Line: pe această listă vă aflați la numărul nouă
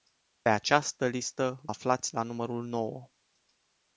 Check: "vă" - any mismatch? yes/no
yes